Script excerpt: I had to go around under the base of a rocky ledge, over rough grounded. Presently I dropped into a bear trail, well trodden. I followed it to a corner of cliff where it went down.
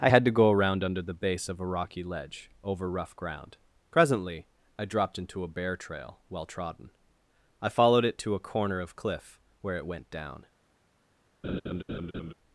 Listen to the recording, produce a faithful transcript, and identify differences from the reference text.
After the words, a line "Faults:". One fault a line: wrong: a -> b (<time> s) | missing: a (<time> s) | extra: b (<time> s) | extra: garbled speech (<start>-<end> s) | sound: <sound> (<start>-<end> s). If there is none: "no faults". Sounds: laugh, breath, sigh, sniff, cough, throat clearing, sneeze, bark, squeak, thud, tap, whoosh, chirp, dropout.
I had to go around under the base of a rocky ledge, over rough ground. Presently I dropped into a bear trail, well trodden. I followed it to a corner of cliff where it went down.
Faults:
wrong: grounded -> ground (3.2 s)
sound: laugh (11.4-12.3 s)